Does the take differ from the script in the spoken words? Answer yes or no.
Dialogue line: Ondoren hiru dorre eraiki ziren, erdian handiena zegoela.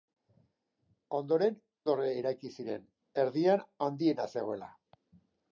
yes